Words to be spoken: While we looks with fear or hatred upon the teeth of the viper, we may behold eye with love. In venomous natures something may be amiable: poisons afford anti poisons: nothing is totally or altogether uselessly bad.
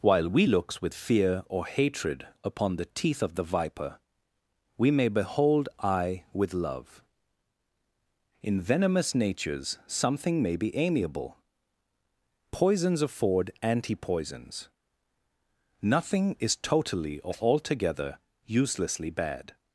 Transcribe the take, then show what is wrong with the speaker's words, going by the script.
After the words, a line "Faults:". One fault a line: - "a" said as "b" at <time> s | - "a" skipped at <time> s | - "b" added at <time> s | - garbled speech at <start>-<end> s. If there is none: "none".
While we looks with fear or hatred upon the teeth of the viper, we may behold eye with love. In venomous natures something may be amiable: poisons afford anti poisons: nothing is totally or altogether uselessly bad.
Faults:
none